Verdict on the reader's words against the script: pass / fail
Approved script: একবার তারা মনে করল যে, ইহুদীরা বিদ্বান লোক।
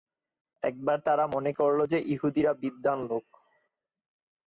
pass